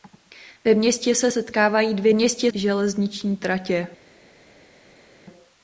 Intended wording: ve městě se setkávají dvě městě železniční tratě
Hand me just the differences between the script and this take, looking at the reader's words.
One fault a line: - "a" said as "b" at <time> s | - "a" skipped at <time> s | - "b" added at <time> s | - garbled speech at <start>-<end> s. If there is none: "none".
none